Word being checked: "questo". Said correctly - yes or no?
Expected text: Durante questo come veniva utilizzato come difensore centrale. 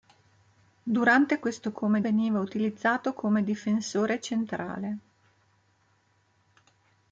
yes